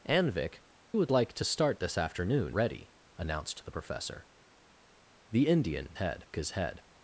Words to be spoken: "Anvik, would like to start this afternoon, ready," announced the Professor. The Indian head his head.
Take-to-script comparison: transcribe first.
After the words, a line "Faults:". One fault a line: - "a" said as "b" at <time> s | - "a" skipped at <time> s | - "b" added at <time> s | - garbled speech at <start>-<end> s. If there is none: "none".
"Anvik, would like to start this afternoon, ready," announced the Professor. The Indian head his head.
Faults:
none